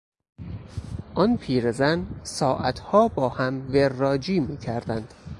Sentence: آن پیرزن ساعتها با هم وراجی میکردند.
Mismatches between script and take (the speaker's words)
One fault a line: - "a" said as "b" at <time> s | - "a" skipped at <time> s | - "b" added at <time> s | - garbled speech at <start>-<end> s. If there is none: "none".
none